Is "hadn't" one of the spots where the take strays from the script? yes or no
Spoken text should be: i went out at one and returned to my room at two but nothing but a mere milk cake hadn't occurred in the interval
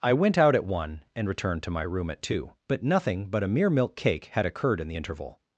yes